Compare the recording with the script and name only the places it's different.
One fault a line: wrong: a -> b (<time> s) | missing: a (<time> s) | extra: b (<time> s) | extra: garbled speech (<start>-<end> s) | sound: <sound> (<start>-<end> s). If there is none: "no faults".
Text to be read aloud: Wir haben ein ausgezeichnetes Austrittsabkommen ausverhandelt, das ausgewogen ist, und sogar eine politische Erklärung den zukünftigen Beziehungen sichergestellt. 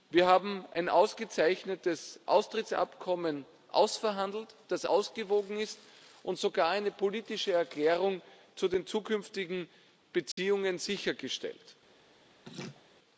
extra: zu (8.6 s)
sound: dropout (10.3-10.4 s)
sound: laugh (12.4-12.8 s)